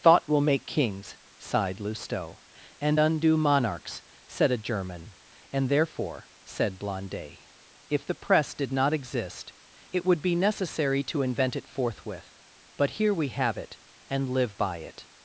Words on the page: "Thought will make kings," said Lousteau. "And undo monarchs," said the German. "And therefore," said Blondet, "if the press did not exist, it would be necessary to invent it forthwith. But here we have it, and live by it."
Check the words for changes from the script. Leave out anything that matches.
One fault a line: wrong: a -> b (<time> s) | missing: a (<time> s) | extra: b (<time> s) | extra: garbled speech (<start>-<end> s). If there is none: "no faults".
wrong: said -> sighed (1.4 s)
wrong: the -> a (4.5 s)